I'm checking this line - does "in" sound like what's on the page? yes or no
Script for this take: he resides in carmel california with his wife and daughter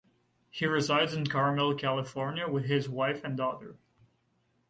yes